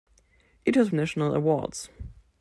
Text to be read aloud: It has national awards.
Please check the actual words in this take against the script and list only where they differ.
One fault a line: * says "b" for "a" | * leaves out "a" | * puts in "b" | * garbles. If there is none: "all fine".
all fine